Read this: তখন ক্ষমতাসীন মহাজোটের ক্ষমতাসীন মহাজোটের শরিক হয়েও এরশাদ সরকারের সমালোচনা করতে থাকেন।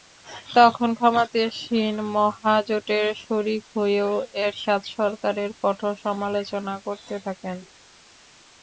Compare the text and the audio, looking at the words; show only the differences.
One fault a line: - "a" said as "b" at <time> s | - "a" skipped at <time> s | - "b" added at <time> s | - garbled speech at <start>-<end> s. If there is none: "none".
- "ক্ষমতাসীন মহাজোটের" skipped at 3.1 s
- "কঠোর" added at 5.6 s